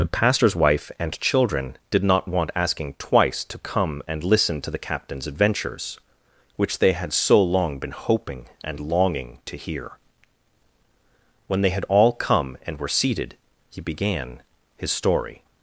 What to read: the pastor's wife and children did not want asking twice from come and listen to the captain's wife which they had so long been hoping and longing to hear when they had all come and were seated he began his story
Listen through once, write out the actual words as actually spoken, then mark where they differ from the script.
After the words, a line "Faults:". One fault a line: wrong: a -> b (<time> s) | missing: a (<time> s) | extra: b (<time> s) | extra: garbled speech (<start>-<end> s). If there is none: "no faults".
the pastor's wife and children did not want asking twice to come and listen to the captain's adventures which they had so long been hoping and longing to hear when they had all come and were seated he began his story
Faults:
wrong: from -> to (3.4 s)
wrong: wife -> adventures (5.3 s)